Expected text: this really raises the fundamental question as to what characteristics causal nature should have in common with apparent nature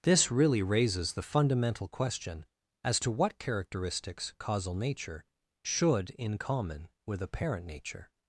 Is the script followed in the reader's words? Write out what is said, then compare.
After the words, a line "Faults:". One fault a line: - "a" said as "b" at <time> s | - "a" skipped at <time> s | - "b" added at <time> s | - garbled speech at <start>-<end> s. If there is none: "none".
this really raises the fundamental question as to what characteristics causal nature should in common with apparent nature
Faults:
- "have" skipped at 6.1 s